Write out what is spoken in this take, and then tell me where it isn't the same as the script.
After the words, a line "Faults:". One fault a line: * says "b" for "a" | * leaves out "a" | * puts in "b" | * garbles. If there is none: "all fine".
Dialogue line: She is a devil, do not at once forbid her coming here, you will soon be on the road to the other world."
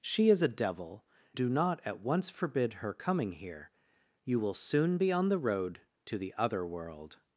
She is a devil, do not at once forbid her coming here, you will soon be on the road to the other world."
Faults:
all fine